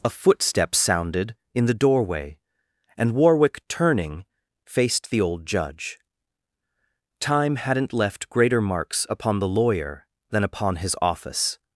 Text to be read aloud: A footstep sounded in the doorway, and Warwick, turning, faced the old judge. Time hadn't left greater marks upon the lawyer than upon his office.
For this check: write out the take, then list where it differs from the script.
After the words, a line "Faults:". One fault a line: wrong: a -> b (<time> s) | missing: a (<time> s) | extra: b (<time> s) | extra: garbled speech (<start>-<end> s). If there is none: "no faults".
A footstep sounded in the doorway, and Warwick, turning, faced the old judge. Time hadn't left greater marks upon the lawyer than upon his office.
Faults:
no faults